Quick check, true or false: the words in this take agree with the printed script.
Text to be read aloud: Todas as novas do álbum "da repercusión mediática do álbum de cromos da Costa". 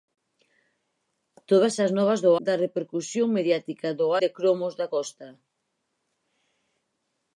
false